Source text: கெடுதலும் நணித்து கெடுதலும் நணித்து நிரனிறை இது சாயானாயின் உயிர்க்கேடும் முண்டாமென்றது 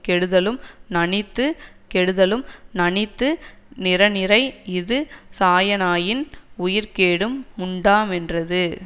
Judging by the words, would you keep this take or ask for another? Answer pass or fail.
pass